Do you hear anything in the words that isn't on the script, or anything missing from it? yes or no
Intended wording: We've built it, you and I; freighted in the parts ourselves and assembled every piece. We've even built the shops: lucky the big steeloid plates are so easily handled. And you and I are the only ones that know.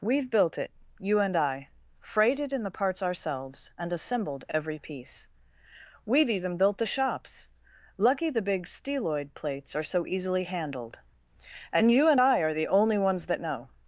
no